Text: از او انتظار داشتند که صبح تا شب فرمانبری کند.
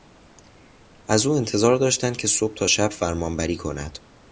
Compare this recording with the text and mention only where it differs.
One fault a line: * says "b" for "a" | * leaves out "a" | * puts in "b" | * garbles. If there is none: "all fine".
all fine